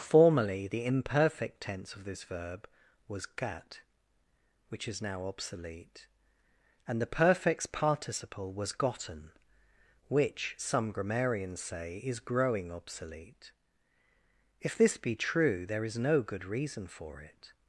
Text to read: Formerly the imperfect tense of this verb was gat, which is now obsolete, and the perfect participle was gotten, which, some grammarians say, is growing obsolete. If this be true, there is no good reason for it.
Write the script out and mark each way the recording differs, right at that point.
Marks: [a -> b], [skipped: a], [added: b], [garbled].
Formerly the imperfect tense of this verb was gat, which is now obsolete, and the [perfect -> perfects] participle was gotten, which, some grammarians say, is growing obsolete. If this be true, there is no good reason for it.